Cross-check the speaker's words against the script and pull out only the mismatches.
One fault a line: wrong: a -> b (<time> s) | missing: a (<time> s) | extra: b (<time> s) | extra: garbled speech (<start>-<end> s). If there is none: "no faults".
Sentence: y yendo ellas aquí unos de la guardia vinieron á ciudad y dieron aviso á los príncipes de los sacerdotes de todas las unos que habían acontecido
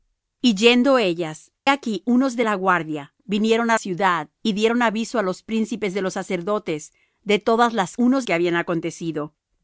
no faults